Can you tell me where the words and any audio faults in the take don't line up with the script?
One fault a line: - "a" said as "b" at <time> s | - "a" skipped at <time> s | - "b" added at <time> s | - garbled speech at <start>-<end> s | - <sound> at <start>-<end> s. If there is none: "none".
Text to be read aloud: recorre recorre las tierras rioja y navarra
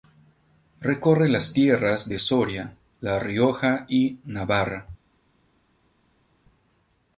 - "recorre" skipped at 1.3 s
- "de soria la" added at 2.1 s